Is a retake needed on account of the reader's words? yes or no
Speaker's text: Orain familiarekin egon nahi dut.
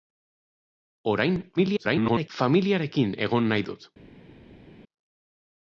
yes